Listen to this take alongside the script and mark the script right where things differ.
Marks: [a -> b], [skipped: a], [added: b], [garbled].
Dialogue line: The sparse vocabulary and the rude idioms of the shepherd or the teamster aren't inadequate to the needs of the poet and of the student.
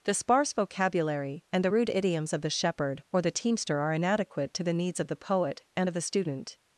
The sparse vocabulary and the rude idioms of the shepherd or the teamster [aren't -> are] inadequate to the needs of the poet and of the student.